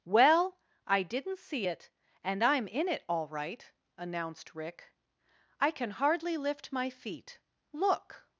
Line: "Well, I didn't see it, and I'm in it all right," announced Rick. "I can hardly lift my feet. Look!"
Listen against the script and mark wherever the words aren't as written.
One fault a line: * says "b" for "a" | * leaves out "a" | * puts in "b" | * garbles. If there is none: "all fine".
all fine